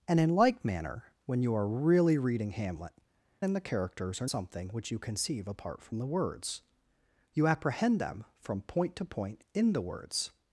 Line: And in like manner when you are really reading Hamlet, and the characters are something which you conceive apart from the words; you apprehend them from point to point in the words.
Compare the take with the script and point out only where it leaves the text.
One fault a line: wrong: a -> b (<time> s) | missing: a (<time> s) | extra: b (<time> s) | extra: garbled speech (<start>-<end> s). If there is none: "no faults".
no faults